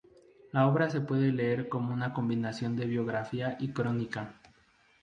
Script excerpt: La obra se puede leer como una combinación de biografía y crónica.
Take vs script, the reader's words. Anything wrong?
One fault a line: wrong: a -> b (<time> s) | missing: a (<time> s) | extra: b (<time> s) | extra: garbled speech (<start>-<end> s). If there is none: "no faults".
no faults